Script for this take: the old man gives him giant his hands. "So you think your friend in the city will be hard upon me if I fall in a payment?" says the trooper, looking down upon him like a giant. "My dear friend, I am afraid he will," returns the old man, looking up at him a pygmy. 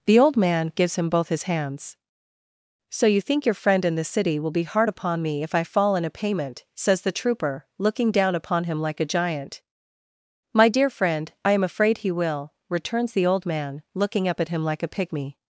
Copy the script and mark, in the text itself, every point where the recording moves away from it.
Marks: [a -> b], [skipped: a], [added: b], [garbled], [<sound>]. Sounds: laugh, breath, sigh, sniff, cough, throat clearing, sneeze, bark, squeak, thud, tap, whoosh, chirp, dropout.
the old man gives him [giant -> both] his hands. "So you think your friend in the city will be hard upon me if I fall in a payment?" says the trooper, looking down upon him like a giant. "My dear friend, I am afraid he will," returns the old man, looking up at him [added: like] a pygmy.